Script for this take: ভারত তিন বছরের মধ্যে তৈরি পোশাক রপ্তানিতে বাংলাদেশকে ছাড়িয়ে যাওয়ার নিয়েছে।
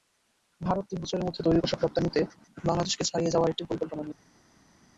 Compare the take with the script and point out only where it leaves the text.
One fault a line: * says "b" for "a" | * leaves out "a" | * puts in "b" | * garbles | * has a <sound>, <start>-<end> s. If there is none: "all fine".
* puts in "একটি পরিকল্পনা"